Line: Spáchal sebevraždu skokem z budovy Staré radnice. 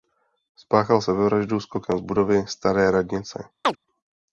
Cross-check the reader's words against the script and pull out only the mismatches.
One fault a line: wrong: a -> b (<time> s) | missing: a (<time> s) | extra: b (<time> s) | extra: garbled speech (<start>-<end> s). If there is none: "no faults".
no faults